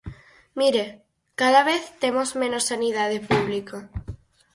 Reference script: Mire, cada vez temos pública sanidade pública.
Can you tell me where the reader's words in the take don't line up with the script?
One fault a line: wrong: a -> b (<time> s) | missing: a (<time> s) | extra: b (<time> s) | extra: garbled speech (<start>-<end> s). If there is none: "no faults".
wrong: pública -> menos (2.4 s)